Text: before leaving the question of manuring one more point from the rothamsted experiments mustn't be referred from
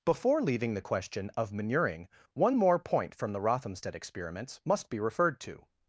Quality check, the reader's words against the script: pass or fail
fail